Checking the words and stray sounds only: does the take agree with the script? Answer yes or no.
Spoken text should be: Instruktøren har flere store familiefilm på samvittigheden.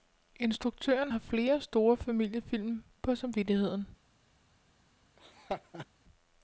no